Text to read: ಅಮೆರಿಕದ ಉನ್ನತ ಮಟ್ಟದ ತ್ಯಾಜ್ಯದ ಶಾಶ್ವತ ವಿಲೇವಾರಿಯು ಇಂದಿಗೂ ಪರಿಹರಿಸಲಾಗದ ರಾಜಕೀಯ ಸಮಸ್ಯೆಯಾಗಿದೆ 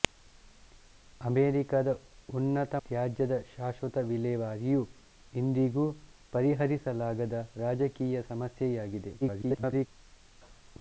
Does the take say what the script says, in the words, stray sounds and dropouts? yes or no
no